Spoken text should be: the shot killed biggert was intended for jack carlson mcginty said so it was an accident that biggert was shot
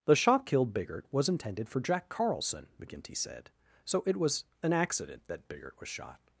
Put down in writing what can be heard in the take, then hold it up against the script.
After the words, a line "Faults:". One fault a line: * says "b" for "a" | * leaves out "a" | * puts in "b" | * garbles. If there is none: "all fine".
the shot killed biggert was intended for jack carlson mcginty said so it was an accident that biggert was shot
Faults:
all fine